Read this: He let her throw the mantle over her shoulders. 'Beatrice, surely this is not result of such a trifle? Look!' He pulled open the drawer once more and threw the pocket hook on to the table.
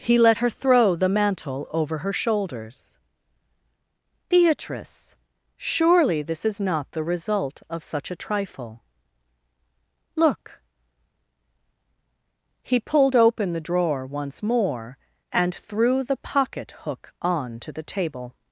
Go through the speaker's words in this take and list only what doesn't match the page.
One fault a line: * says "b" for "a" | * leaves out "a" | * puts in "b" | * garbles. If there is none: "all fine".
* puts in "the"